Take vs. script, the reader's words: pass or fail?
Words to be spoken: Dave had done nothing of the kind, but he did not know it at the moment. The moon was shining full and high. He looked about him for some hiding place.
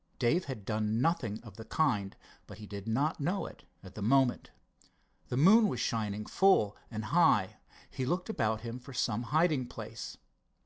pass